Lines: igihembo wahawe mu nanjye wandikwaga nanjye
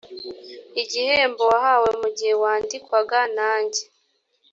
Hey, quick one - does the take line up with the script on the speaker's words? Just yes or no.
no